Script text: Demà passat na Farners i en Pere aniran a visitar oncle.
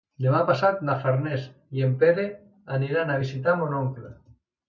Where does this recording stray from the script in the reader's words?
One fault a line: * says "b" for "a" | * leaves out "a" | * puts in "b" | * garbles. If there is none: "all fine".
* puts in "mon"